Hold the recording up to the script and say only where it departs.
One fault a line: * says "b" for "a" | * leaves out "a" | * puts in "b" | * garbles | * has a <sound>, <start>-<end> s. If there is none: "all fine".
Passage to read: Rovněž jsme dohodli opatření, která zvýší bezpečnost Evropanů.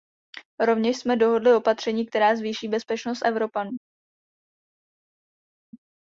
all fine